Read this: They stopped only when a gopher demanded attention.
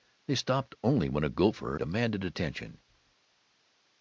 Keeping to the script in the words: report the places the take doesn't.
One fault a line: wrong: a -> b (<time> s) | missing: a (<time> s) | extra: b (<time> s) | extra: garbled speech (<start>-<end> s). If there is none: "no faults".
no faults